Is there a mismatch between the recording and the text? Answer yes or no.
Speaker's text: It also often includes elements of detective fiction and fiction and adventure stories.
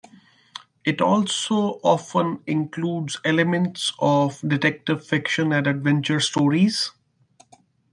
yes